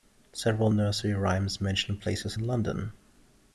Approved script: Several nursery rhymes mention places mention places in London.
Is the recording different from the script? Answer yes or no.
yes